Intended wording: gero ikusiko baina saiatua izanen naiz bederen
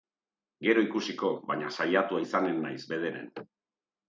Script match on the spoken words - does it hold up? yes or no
yes